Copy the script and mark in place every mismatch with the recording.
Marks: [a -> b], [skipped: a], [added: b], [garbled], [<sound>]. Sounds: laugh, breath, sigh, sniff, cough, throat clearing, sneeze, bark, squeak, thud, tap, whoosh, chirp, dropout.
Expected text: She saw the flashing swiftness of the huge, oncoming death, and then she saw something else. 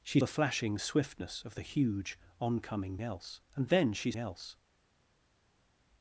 She [skipped: saw] the flashing swiftness of the huge, oncoming [death, -> else] and then she [skipped: saw something] else.